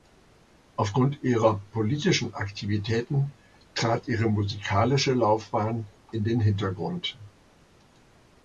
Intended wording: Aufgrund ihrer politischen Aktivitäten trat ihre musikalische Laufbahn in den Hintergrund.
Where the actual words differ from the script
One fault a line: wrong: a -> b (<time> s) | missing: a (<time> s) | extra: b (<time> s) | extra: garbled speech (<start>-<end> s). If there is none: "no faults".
no faults